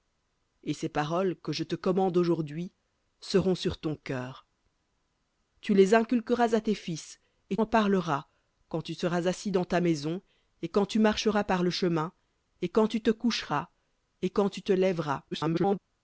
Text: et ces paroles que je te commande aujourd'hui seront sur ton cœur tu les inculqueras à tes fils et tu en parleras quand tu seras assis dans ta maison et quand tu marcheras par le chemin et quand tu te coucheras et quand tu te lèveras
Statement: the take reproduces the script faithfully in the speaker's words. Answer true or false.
false